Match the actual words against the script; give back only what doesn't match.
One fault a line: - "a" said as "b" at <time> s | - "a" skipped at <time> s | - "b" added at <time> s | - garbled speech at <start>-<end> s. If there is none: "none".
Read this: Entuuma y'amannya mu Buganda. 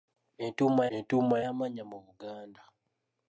- "entuuma" added at 0.9 s